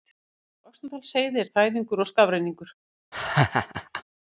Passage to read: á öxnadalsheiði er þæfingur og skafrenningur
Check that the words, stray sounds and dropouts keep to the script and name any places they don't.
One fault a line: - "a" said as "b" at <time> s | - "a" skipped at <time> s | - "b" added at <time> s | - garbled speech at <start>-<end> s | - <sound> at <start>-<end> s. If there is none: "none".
- laugh at 3.1-4.0 s